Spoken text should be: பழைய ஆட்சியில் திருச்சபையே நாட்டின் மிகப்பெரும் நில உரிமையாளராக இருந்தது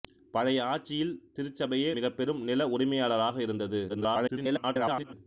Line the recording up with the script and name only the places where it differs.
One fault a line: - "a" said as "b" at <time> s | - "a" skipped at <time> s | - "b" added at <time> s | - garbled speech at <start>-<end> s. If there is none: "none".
- "நாட்டின்" skipped at 1.9 s
- garbled speech at 3.9-5.1 s